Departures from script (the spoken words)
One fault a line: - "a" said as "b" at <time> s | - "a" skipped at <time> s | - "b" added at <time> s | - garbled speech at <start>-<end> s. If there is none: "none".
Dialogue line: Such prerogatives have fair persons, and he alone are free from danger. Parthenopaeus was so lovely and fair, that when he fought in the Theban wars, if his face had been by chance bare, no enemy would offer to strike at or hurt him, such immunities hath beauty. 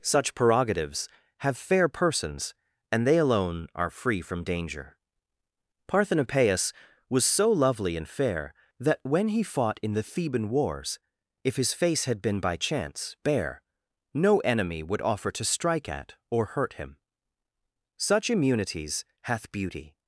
- "he" said as "they" at 3.0 s